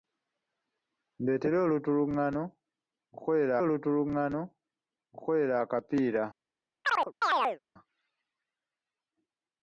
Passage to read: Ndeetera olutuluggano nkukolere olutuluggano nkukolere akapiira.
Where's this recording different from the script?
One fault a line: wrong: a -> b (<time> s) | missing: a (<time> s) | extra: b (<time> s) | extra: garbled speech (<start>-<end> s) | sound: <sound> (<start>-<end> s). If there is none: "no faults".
sound: chirp (6.8-7.6 s)